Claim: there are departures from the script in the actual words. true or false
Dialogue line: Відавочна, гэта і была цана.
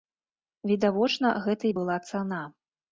false